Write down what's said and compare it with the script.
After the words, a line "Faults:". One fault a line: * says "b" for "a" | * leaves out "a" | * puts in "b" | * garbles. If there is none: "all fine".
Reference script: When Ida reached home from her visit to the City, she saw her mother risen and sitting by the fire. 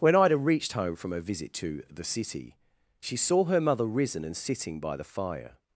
When Ida reached home from her visit to the City, she saw her mother risen and sitting by the fire.
Faults:
all fine